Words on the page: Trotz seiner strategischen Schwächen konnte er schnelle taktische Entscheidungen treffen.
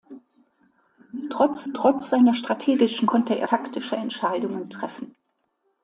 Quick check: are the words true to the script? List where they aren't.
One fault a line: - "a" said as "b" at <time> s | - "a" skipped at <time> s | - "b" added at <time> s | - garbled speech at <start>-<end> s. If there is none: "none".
- "trotz" added at 1.7 s
- "Schwächen" skipped at 3.1 s
- "schnelle" skipped at 3.5 s